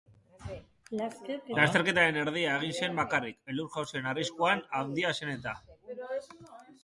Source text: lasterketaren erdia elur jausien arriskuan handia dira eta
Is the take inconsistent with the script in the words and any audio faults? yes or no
yes